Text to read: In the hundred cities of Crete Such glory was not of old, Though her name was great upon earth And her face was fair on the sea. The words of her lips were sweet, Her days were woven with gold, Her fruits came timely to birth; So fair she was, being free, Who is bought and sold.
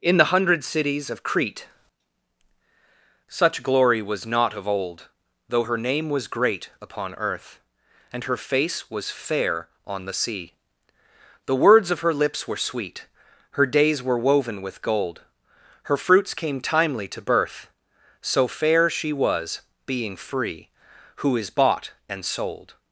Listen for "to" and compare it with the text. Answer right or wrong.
right